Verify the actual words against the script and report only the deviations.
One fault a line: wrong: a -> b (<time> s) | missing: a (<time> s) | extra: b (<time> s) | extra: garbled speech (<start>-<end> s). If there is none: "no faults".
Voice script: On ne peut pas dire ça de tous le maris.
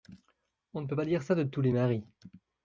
wrong: le -> les (1.6 s)